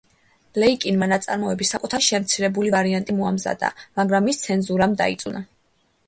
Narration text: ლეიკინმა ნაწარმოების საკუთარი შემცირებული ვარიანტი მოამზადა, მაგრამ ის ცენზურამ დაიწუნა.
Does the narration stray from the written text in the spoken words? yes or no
no